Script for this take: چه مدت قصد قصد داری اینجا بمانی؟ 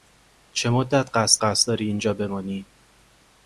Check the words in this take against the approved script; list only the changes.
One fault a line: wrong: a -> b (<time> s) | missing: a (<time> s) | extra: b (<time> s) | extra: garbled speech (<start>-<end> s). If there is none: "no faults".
no faults